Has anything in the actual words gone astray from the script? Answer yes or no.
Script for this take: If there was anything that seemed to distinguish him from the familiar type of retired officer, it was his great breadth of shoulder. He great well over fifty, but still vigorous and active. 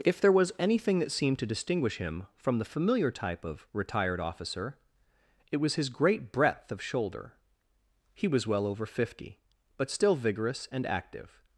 yes